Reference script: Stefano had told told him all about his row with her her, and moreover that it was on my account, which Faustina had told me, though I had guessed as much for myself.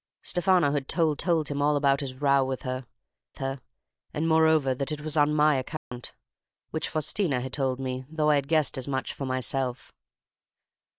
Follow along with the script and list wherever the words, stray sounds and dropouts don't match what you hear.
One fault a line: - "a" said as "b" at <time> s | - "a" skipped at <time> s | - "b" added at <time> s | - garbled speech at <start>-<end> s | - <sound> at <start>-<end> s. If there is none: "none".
- dropout at 5.8-5.9 s